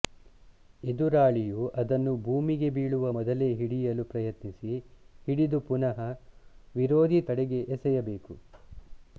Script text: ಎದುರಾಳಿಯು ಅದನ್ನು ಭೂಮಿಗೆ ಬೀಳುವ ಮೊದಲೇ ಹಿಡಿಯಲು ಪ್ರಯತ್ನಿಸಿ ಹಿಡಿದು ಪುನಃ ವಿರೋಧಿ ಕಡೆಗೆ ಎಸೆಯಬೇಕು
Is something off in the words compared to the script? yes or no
no